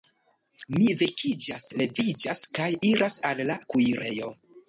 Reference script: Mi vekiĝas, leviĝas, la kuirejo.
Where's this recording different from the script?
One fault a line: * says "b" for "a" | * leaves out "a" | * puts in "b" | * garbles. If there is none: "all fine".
* puts in "kaj iras al"